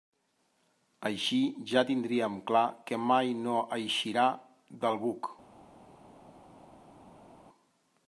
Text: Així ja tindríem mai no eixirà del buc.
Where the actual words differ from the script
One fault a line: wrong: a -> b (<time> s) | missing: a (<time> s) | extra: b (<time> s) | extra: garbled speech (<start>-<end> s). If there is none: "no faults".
extra: clar que (2.5 s)